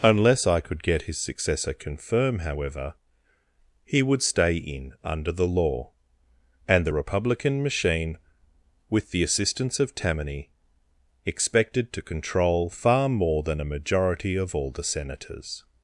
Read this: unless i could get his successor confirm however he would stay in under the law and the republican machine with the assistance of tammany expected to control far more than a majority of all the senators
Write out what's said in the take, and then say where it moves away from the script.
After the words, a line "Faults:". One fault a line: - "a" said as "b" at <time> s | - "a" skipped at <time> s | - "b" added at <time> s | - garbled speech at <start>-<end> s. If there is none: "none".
unless i could get his successor confirm however he would stay in under the law and the republican machine with the assistance of tammany expected to control far more than a majority of all the senators
Faults:
none